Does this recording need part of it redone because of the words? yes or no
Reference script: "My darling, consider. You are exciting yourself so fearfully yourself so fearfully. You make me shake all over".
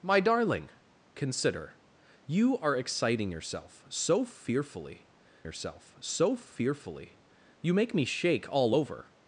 no